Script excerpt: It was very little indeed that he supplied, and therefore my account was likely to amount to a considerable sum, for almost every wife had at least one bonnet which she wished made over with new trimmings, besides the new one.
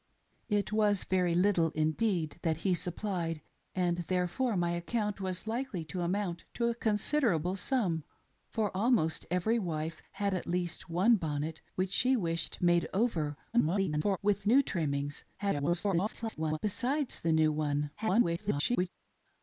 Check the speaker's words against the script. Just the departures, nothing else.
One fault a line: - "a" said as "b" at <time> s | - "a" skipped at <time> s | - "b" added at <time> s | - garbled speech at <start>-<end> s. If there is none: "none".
- garbled speech at 13.5-14.2 s
- garbled speech at 15.4-16.6 s
- garbled speech at 18.0-18.9 s